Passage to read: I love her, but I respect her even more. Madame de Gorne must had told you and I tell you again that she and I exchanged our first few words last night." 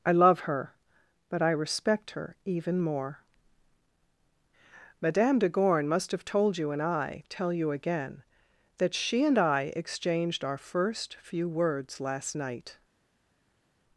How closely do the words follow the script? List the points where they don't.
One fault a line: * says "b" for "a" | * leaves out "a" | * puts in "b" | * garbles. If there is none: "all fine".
* says "have" for "had"